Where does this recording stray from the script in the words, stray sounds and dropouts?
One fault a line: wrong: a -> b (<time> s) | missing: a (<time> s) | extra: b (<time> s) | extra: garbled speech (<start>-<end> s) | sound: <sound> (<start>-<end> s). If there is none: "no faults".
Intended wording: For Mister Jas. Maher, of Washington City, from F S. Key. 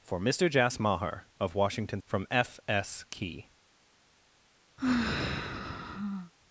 missing: City (2.0 s)
sound: sigh (4.8-6.3 s)